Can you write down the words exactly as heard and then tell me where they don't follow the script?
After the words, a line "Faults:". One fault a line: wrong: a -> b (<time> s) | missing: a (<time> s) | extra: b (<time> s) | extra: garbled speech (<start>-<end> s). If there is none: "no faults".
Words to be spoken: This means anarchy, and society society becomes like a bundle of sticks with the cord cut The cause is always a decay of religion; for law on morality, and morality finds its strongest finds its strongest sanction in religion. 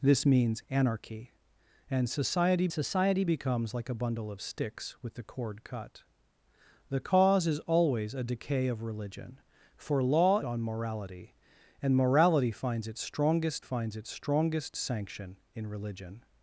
This means anarchy, and society society becomes like a bundle of sticks with the cord cut The cause is always a decay of religion; for law on morality, and morality finds its strongest finds its strongest sanction in religion.
Faults:
no faults